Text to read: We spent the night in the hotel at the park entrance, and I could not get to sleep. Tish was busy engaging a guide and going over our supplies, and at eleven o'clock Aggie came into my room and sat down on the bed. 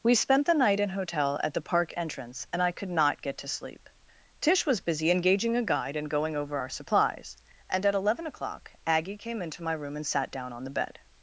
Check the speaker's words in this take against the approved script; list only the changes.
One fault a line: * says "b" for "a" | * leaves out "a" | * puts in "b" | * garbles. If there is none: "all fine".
* leaves out "the"